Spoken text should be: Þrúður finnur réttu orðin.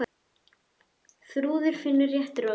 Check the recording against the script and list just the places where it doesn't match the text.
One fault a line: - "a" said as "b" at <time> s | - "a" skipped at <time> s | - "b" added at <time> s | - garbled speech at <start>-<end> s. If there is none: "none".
none